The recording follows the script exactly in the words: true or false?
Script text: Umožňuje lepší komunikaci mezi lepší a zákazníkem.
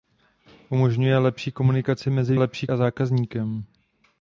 true